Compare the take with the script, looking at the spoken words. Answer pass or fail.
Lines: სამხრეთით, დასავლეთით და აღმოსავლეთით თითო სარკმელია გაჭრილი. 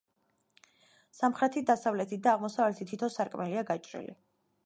pass